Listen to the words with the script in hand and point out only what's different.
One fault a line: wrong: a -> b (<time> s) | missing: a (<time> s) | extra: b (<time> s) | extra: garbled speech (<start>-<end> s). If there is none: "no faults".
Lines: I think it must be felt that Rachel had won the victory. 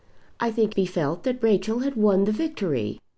missing: it must (0.7 s)